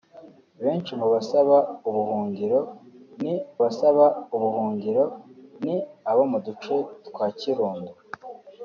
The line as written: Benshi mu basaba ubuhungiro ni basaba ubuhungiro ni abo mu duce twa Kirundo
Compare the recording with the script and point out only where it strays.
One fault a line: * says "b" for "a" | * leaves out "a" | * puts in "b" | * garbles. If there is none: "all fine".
all fine